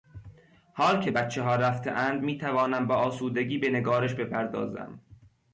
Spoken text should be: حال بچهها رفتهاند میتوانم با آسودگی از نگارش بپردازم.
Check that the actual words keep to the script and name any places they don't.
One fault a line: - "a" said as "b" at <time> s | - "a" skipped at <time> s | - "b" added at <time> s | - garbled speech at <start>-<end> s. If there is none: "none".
- "که" added at 1.0 s
- "از" said as "به" at 3.6 s